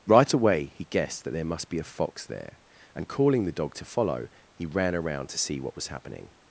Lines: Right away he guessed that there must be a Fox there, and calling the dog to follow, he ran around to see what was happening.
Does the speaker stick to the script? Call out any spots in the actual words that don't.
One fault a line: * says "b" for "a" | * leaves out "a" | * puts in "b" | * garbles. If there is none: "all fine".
all fine